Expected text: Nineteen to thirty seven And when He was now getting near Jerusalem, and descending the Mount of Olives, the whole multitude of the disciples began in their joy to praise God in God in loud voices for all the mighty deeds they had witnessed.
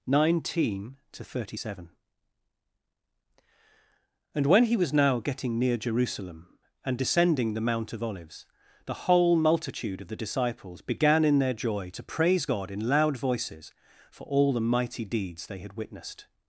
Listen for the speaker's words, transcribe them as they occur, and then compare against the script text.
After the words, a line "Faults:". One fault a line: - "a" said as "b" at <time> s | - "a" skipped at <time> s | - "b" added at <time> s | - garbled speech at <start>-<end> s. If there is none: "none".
Nineteen to thirty seven And when He was now getting near Jerusalem, and descending the Mount of Olives, the whole multitude of the disciples began in their joy to praise God in loud voices for all the mighty deeds they had witnessed.
Faults:
- "God in" skipped at 12.9 s